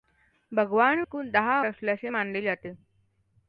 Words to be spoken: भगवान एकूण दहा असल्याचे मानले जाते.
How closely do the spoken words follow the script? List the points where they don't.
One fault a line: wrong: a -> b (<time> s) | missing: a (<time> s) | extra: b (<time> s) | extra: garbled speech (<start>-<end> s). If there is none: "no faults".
no faults